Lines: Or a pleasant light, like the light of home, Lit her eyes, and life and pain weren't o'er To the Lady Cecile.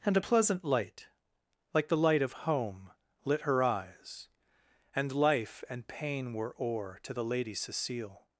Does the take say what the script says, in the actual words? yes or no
no